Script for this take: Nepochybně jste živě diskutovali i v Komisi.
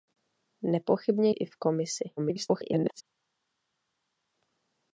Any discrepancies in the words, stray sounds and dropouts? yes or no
yes